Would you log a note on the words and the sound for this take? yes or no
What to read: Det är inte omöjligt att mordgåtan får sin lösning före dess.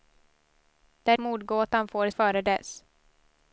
yes